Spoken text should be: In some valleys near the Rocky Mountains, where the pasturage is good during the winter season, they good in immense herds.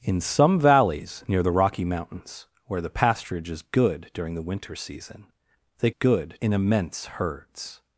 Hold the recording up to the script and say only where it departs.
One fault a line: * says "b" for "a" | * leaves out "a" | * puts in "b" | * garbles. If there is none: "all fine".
all fine